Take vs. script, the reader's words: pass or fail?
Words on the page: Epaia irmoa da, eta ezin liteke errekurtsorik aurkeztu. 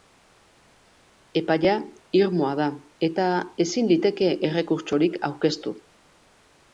pass